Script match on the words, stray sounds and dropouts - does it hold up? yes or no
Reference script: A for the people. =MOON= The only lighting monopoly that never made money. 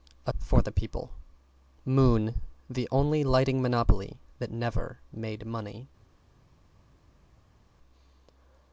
yes